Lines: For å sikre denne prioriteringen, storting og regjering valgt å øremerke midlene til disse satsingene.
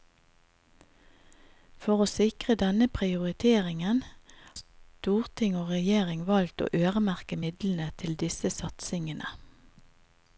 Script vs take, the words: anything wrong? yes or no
no